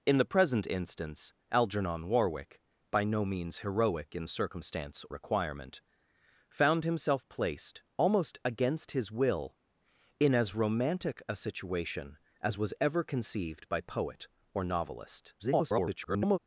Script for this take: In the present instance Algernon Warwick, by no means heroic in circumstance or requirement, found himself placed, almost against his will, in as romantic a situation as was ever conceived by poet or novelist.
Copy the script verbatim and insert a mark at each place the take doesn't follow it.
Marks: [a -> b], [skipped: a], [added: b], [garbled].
In the present instance Algernon Warwick, by no means heroic in circumstance [skipped: or] requirement, found himself placed, almost against his will, in as romantic a situation as was ever conceived by poet or novelist. [garbled]